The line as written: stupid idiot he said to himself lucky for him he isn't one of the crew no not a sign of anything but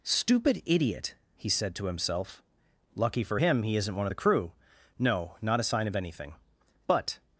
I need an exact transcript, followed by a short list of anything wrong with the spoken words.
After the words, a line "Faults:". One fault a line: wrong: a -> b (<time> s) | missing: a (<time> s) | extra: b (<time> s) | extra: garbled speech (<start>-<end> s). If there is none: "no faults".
stupid idiot he said to himself lucky for him he isn't one of the crew no not a sign of anything but
Faults:
no faults